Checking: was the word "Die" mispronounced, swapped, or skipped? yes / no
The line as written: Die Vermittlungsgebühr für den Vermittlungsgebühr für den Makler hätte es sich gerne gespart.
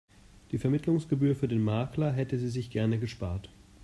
no